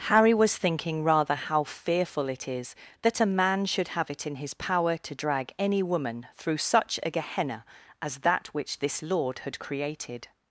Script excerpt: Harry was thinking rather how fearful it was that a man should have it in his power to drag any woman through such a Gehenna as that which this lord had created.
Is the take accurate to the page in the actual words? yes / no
no